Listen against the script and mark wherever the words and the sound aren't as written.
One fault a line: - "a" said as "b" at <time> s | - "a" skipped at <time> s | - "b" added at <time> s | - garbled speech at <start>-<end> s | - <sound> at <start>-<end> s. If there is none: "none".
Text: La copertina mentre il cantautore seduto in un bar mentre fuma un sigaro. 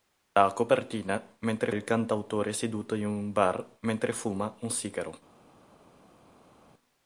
none